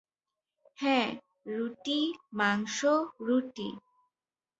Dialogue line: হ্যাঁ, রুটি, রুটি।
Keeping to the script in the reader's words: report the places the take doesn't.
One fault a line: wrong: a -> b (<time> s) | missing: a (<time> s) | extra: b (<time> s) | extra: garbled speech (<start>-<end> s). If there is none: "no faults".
extra: মাংস (2.3 s)